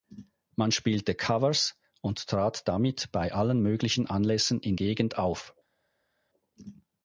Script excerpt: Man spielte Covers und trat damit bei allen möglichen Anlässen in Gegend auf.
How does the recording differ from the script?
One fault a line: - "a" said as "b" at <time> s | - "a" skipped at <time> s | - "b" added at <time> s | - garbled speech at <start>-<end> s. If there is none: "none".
none